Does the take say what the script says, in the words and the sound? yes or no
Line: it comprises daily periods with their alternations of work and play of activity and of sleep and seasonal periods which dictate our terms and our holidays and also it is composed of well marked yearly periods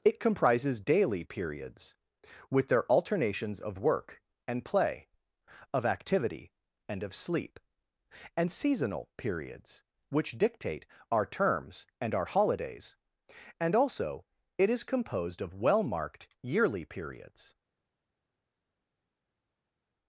yes